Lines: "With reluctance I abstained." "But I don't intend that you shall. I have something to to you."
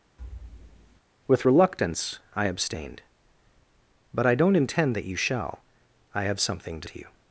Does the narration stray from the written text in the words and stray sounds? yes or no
yes